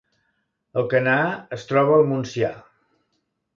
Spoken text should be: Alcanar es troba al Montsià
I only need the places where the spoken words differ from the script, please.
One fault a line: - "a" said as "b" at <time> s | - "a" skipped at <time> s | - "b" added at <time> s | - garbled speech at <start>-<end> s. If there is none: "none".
none